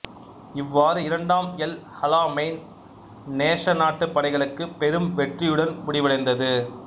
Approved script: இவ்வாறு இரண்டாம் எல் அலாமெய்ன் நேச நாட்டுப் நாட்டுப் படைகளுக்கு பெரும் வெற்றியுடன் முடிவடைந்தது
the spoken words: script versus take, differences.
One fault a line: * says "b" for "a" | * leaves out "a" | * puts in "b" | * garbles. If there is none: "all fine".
* leaves out "நாட்டுப்"